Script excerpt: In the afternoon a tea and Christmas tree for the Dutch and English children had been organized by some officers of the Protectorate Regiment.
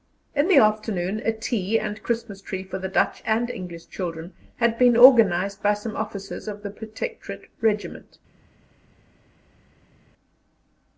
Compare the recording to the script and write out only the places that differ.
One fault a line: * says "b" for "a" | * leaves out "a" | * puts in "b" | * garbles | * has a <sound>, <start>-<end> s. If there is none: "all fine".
all fine